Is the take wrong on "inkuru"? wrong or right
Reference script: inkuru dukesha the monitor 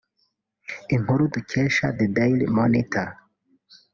right